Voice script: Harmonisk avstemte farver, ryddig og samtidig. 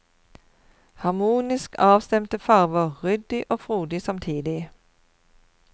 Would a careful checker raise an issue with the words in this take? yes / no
yes